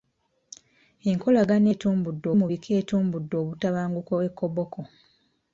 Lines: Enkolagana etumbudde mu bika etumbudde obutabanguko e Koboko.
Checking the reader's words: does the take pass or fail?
pass